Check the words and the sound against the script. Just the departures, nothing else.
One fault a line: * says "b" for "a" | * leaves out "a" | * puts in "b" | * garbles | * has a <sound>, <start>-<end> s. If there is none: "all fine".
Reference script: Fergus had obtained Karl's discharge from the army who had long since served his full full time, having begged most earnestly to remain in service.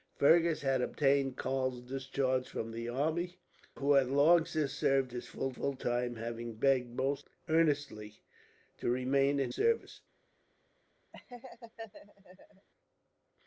* has a laugh, 11.1-12.7 s